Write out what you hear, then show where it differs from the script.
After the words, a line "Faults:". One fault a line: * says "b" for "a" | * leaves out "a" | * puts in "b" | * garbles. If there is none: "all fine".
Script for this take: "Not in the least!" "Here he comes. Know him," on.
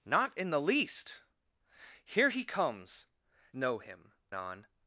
"Not in the least!" "Here he comes. Know him," on.
Faults:
all fine